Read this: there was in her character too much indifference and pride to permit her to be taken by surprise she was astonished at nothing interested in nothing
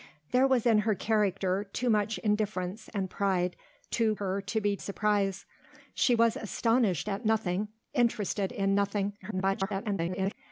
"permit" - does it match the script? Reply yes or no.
no